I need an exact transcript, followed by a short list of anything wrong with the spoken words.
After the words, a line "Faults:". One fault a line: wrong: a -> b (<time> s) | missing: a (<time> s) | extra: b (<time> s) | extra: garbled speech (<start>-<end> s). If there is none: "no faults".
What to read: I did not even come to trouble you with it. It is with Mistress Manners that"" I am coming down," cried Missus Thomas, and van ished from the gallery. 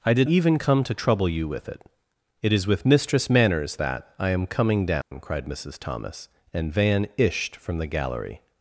I did even come to trouble you with it. It is with Mistress Manners that"" I am coming down," cried Missus Thomas, and van ished from the gallery.
Faults:
missing: not (0.3 s)